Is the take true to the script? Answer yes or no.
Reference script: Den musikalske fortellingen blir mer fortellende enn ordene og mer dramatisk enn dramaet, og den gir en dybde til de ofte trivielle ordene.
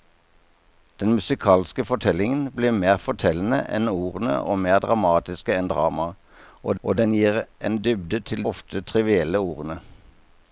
no